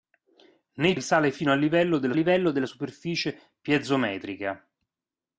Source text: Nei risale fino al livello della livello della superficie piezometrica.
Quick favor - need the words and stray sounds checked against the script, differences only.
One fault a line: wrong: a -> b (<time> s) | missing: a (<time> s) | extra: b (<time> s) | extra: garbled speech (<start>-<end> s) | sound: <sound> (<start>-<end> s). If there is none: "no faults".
no faults